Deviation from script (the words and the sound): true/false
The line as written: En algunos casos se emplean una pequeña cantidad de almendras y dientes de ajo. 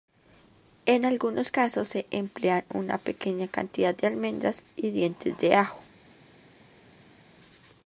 false